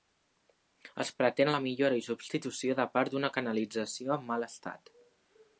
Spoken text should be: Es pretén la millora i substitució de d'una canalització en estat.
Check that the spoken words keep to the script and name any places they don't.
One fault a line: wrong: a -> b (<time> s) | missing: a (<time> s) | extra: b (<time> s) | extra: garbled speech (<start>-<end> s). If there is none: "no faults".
extra: part (2.9 s)
extra: mal (4.3 s)